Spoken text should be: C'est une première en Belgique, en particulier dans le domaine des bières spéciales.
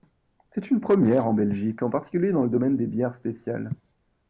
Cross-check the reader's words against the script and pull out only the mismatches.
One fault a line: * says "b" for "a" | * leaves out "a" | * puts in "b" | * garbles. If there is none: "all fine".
all fine